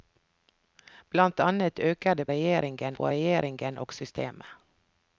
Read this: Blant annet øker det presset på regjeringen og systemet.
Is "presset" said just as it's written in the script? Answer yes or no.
no